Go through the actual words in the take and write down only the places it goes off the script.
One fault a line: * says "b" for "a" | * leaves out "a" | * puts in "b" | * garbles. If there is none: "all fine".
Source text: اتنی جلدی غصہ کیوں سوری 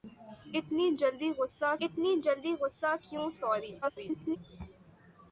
* puts in "اتنی جلدی غصہ"
* garbles